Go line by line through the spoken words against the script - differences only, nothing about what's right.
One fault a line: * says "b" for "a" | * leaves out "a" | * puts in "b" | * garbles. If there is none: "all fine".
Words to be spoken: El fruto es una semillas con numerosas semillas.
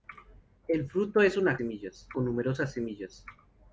all fine